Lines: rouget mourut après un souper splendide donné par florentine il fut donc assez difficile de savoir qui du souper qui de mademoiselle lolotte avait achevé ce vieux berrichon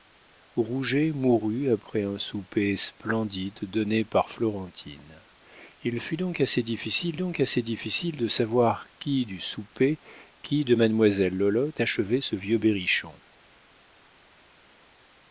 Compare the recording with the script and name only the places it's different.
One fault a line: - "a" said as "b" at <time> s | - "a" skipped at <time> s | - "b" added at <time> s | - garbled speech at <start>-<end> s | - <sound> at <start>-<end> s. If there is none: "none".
- "donc assez difficile" added at 7.2 s
- "avait" skipped at 11.8 s